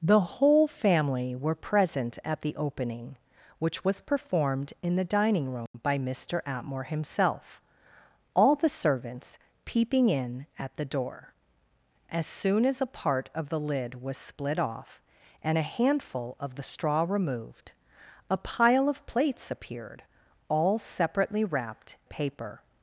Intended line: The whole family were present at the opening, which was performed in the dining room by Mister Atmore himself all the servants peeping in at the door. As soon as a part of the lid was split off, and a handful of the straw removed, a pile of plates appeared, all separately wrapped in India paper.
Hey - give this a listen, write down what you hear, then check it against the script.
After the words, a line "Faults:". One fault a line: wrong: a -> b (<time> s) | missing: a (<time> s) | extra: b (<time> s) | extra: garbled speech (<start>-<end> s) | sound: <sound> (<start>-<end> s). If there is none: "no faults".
The whole family were present at the opening, which was performed in the dining room by Mister Atmore himself all the servants peeping in at the door. As soon as a part of the lid was split off, and a handful of the straw removed, a pile of plates appeared, all separately wrapped paper.
Faults:
sound: dropout (5.7-5.7 s)
missing: in India (21.9 s)